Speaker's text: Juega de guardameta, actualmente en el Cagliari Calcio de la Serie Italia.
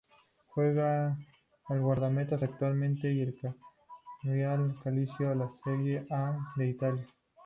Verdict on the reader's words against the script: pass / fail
fail